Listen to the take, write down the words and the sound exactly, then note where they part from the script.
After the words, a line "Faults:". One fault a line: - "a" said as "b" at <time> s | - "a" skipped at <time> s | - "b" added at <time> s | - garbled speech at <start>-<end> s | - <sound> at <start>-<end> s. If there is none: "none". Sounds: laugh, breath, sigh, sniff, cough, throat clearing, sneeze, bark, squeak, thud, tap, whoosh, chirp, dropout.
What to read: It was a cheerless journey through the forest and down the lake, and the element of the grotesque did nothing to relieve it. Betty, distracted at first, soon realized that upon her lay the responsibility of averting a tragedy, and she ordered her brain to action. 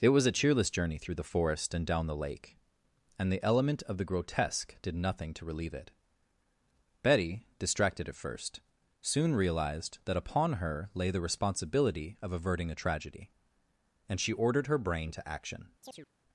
It was a cheerless journey through the forest and down the lake, and the element of the grotesque did nothing to relieve it. Betty, distracted at first, soon realized that upon her lay the responsibility of averting a tragedy, and she ordered her brain to action.
Faults:
- chirp at 15.8-16.1 s